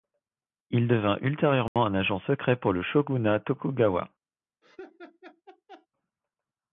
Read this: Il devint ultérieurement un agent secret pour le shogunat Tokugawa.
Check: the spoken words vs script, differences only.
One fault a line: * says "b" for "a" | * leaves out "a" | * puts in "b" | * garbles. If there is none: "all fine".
all fine